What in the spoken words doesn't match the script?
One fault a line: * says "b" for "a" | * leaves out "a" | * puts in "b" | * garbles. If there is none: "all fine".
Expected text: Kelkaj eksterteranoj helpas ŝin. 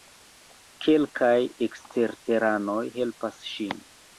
all fine